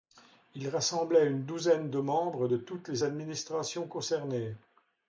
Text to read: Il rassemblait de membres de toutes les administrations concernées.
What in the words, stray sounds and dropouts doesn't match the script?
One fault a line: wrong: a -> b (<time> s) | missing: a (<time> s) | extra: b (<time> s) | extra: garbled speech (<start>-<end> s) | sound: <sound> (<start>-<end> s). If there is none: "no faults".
extra: une douzaine (1.3 s)